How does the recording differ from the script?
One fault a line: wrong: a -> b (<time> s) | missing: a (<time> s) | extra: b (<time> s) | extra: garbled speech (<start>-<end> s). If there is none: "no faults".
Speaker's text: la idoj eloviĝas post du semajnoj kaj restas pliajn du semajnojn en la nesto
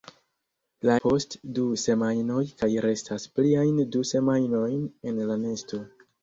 missing: idoj eloviĝas (0.9 s)